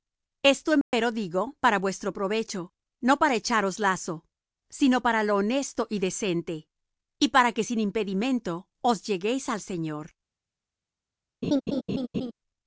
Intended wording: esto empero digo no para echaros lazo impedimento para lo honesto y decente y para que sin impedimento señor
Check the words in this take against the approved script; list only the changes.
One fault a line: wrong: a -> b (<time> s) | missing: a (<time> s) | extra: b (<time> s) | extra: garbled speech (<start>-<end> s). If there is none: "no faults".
extra: para vuestro provecho (1.6 s)
wrong: impedimento -> sino (4.7 s)
extra: os lleguéis al (8.8 s)